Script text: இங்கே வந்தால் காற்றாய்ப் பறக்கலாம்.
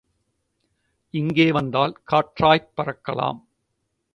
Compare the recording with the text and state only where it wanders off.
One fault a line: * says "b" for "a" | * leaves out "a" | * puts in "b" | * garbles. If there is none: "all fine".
all fine